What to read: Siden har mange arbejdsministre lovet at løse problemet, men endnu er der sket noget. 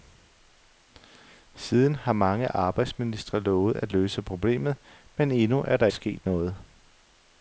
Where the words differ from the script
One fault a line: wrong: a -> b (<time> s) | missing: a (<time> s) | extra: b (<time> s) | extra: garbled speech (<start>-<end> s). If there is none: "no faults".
no faults